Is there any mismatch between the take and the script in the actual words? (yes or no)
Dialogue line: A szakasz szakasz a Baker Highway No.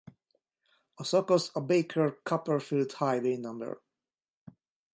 yes